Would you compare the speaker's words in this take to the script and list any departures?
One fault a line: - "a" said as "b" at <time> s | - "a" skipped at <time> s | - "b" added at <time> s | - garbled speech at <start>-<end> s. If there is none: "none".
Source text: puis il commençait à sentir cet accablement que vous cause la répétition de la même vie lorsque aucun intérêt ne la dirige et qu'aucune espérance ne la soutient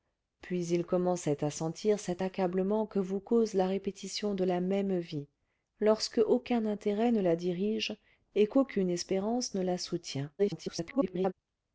- garbled speech at 10.4-11.3 s